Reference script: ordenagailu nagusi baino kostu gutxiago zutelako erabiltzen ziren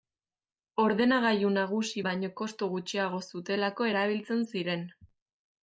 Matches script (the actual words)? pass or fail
pass